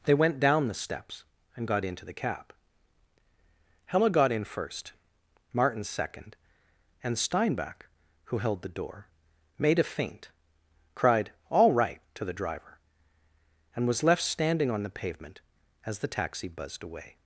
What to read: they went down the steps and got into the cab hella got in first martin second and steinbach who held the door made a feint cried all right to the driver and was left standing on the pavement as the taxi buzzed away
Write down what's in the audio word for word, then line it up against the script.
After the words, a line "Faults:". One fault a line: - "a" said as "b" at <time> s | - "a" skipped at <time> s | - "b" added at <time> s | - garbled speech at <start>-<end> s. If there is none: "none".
they went down the steps and got into the cab hella got in first martin second and steinbach who held the door made a feint cried all right to the driver and was left standing on the pavement as the taxi buzzed away
Faults:
none